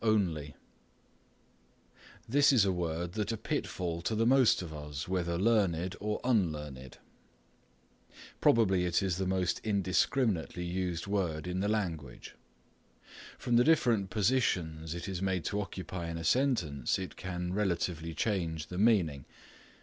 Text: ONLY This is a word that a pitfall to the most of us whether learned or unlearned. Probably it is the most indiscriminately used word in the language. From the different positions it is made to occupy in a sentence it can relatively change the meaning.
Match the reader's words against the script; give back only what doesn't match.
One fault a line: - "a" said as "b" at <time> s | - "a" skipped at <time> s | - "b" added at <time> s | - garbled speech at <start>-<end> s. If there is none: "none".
none